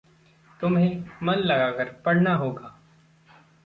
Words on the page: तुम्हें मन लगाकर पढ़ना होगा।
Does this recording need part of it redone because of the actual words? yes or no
no